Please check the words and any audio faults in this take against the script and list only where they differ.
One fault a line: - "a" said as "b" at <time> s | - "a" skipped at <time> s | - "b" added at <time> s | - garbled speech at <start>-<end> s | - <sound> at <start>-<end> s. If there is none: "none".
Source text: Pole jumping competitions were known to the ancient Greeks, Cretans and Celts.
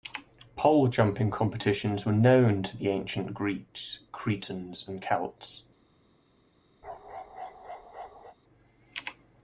- bark at 6.8-8.4 s